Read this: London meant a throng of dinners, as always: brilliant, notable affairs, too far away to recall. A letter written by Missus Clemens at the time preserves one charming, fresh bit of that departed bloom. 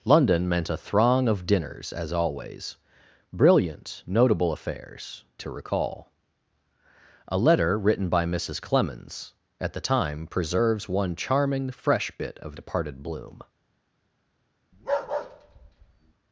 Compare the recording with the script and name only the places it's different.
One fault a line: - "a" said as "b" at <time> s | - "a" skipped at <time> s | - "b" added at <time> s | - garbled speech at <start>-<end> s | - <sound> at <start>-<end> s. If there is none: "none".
- "too far away" skipped at 5.3 s
- "that" skipped at 12.6 s
- bark at 14.7-16.1 s